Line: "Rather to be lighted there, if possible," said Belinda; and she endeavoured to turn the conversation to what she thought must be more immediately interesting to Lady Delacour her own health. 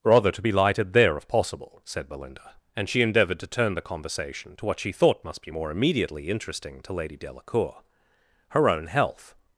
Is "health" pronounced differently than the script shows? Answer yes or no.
no